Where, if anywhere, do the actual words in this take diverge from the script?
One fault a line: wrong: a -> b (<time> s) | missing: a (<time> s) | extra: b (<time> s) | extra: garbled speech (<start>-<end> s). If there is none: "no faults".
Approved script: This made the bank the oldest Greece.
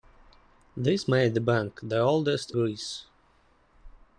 no faults